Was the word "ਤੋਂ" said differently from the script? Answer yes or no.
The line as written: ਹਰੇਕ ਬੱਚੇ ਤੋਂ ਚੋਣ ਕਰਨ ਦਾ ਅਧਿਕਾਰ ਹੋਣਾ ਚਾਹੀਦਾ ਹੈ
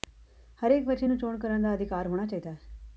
yes